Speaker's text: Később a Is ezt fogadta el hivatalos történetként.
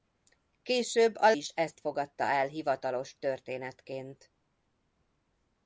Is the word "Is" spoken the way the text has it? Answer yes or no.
yes